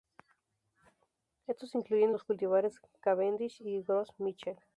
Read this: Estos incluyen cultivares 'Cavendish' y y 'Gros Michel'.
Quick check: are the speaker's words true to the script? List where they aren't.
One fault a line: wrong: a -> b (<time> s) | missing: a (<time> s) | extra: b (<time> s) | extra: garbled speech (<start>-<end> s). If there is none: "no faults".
extra: los (2.1 s)
missing: y (3.8 s)